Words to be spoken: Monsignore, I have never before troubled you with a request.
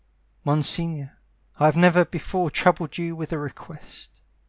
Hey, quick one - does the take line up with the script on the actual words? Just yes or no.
yes